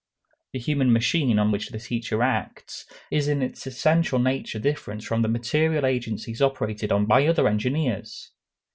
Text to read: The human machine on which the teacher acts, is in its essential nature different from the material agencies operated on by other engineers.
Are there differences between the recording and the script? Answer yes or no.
no